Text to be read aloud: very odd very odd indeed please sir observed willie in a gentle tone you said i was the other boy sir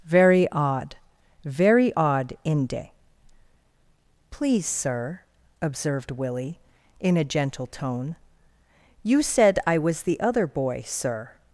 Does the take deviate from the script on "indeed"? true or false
true